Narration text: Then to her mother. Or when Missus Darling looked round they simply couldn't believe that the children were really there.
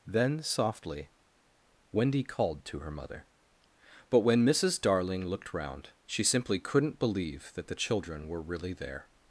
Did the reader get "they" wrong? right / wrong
wrong